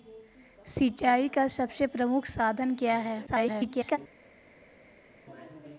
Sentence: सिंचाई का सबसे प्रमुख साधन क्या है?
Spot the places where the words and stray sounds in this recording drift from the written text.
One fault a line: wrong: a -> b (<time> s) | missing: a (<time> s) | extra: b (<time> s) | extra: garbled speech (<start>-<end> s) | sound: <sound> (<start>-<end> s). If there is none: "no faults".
extra: garbled speech (3.3-4.0 s)